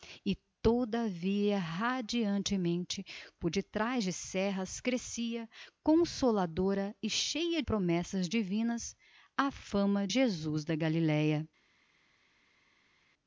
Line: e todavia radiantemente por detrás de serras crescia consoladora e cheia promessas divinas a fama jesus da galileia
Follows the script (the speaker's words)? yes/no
yes